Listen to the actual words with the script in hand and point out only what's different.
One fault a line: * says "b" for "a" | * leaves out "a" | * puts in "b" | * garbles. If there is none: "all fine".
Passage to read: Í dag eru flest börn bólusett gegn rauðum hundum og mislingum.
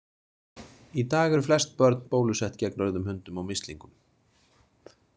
all fine